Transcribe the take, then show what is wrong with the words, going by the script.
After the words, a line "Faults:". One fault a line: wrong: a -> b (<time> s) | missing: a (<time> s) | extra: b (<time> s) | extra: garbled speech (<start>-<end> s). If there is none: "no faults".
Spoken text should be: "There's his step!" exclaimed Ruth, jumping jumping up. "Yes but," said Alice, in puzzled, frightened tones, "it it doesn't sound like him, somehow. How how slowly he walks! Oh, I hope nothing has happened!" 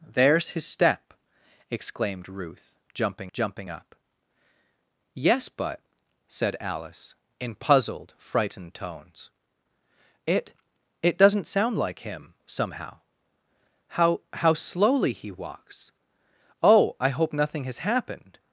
"There's his step!" exclaimed Ruth, jumping jumping up. "Yes but," said Alice, in puzzled, frightened tones, "it it doesn't sound like him, somehow. How how slowly he walks! Oh, I hope nothing has happened!"
Faults:
no faults